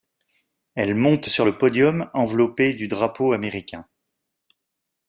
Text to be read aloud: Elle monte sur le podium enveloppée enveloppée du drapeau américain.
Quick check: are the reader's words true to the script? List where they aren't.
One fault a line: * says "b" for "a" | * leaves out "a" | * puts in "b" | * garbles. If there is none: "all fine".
* leaves out "enveloppée"